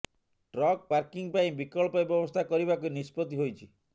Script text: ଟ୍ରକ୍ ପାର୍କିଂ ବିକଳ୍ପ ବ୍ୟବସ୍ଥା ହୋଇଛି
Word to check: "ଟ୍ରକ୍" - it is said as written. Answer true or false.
true